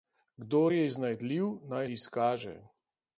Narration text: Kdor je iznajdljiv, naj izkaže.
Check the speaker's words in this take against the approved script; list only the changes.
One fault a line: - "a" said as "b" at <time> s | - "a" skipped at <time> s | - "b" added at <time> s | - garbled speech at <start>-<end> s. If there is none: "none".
none